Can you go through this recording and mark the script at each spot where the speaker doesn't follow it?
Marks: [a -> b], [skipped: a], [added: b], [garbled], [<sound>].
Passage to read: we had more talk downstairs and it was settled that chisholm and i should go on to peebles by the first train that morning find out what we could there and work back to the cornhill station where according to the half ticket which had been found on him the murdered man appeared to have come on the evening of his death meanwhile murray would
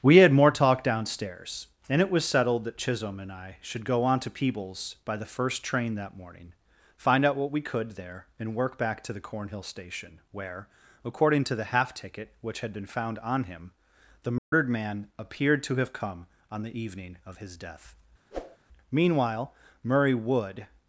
we had more talk downstairs and it was settled that chisholm and i should go on to peebles by the first train that morning find out what we could there and work back to the cornhill station where according to the half ticket which had been found on him the murdered [dropout] man appeared to have come on the evening of his death [whoosh] meanwhile murray would